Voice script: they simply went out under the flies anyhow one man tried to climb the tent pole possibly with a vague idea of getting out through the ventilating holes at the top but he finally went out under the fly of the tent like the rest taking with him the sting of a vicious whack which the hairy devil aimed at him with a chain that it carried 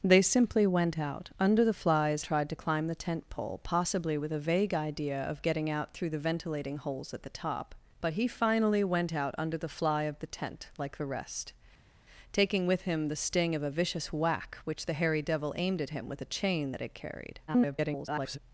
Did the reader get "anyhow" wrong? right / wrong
wrong